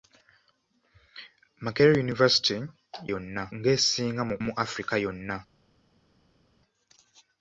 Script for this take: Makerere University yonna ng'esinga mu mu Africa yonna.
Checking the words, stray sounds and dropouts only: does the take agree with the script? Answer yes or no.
yes